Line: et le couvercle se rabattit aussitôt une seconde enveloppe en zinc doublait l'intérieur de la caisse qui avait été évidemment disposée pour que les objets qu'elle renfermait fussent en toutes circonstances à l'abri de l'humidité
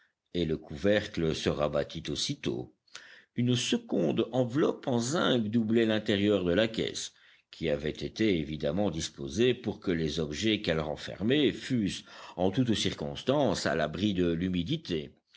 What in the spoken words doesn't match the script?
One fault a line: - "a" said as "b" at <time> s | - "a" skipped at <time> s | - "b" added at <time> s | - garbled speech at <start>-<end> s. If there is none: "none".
none